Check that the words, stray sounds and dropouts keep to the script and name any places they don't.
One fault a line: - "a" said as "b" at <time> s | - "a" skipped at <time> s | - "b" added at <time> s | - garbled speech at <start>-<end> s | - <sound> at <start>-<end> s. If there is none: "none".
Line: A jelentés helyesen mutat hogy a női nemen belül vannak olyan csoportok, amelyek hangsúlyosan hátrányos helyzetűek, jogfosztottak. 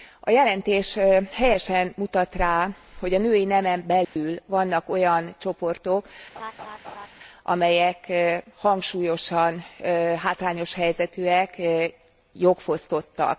- "rá" added at 2.4 s
- dropout at 4.0-4.2 s
- laugh at 6.4-7.1 s